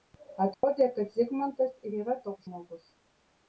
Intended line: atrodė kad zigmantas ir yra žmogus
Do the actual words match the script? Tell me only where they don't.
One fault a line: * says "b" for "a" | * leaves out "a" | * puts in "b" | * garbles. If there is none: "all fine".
* puts in "toks"